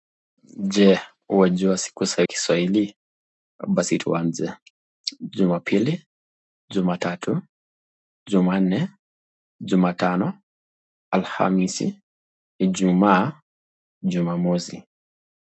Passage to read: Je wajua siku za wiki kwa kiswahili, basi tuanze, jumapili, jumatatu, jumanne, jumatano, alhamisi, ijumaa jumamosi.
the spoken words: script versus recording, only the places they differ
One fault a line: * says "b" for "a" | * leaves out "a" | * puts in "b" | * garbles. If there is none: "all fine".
* leaves out "wiki kwa"